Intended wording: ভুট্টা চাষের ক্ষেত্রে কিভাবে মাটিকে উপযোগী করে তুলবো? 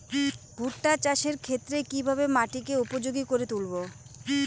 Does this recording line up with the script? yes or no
yes